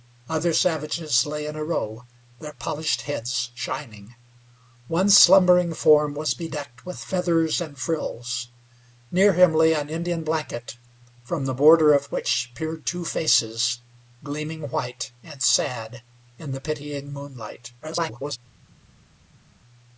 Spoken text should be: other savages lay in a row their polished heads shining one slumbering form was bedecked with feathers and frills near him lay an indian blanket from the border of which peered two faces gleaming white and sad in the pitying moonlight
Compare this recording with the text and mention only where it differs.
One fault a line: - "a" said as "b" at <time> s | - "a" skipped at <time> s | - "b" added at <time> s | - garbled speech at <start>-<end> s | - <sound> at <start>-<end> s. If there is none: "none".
- garbled speech at 17.8-18.4 s